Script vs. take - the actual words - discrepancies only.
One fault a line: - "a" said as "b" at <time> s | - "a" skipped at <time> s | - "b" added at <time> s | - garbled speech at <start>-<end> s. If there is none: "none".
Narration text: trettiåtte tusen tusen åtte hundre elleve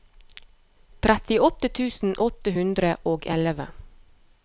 - "tusen" skipped at 2.2 s
- "og" added at 3.1 s